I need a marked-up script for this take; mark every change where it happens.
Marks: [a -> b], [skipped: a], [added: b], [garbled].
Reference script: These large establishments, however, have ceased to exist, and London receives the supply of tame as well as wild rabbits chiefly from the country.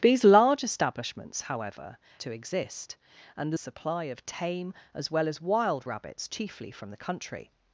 These large establishments, however, [skipped: have ceased] to exist, and [skipped: London receives the] supply of tame as well as wild rabbits chiefly from the country.